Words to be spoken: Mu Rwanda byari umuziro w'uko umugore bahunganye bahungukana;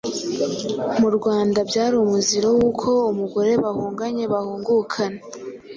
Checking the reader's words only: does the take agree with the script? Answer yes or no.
yes